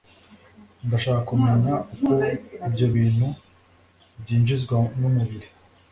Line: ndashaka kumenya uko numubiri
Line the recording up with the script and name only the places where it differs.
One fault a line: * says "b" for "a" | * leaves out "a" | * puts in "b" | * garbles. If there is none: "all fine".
* puts in "ibyo bintu byinjizwa"